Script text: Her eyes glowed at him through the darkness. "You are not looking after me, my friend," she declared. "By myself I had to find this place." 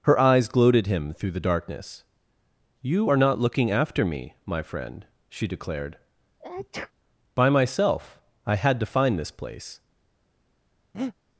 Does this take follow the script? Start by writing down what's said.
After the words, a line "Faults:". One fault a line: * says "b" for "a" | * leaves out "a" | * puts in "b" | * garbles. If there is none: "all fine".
Her eyes glowed at him through the darkness. "You are not looking after me, my friend," she declared. "By myself I had to find this place."
Faults:
all fine